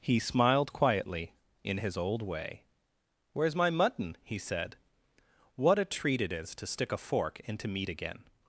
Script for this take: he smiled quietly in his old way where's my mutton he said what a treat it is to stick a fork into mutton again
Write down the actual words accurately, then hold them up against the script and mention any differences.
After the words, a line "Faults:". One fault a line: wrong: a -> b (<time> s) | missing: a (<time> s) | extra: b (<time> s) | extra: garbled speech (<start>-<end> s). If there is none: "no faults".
he smiled quietly in his old way where's my mutton he said what a treat it is to stick a fork into meat again
Faults:
wrong: mutton -> meat (7.7 s)